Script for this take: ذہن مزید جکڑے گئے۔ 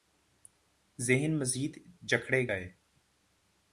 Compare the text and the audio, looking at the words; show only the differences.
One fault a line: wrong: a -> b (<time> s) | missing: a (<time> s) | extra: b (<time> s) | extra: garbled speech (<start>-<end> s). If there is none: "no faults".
no faults